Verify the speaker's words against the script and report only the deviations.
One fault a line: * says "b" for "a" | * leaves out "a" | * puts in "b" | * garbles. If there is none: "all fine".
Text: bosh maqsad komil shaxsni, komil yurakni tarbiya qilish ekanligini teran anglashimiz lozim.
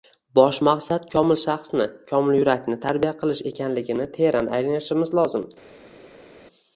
all fine